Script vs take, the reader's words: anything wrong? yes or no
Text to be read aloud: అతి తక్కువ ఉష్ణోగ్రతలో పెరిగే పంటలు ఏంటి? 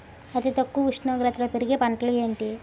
no